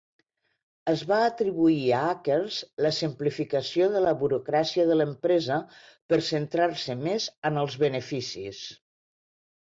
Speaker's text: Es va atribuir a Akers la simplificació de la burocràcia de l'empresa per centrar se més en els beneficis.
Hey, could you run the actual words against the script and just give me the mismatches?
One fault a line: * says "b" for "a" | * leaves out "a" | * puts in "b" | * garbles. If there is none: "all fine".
all fine